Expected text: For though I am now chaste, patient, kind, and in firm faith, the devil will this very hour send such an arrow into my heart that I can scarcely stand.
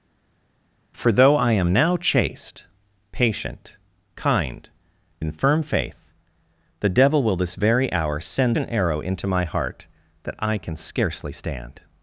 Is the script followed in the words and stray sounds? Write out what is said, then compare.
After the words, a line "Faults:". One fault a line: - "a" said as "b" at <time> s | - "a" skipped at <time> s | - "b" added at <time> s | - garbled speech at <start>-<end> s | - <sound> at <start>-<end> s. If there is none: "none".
For though I am now chaste, patient, kind, in firm faith, the devil will this very hour send an arrow into my heart that I can scarcely stand.
Faults:
- "and" skipped at 4.7 s
- "such" skipped at 8.6 s